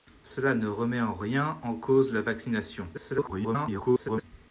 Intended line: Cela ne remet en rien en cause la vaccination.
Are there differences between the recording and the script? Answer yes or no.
yes